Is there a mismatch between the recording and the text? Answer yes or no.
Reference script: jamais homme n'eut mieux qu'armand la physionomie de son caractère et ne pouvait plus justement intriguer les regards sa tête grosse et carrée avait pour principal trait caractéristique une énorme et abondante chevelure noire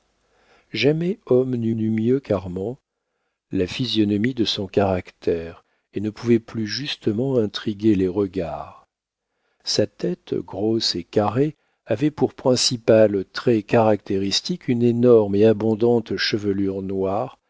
yes